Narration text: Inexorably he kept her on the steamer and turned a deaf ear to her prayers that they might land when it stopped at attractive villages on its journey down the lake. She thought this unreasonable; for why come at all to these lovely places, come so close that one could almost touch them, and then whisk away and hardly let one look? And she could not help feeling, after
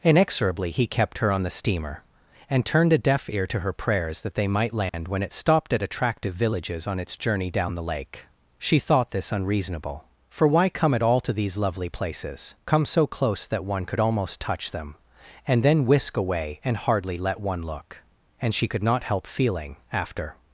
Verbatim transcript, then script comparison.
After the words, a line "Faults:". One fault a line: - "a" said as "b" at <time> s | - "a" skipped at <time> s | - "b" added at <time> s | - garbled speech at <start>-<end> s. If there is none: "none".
Inexorably he kept her on the steamer and turned a deaf ear to her prayers that they might land when it stopped at attractive villages on its journey down the lake. She thought this unreasonable; for why come at all to these lovely places, come so close that one could almost touch them, and then whisk away and hardly let one look? And she could not help feeling, after
Faults:
none